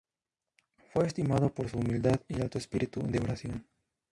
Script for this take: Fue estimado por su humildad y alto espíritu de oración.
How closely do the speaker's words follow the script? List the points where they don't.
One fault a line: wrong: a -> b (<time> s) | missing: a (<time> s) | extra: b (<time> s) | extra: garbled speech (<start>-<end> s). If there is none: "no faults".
no faults